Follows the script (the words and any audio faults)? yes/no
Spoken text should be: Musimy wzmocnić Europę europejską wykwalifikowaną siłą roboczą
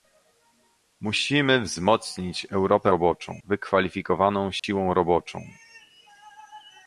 no